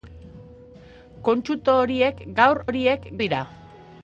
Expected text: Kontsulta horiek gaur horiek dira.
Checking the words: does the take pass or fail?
pass